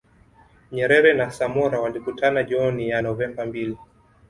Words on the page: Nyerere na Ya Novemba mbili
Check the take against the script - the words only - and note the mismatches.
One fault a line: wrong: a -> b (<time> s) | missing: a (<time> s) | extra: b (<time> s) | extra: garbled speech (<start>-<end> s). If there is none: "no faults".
extra: Samora walikutana jioni (1.3 s)